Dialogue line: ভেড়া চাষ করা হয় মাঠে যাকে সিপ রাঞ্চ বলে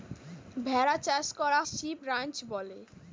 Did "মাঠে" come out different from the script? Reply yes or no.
yes